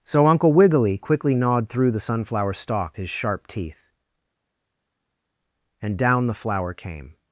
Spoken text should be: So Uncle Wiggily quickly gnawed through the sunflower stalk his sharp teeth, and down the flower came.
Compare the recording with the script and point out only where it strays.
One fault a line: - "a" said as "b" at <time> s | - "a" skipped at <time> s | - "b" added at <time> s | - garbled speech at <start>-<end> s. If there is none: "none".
none